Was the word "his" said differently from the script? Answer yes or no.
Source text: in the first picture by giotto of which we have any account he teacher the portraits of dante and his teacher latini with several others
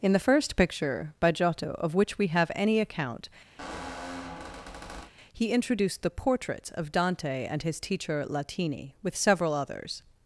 no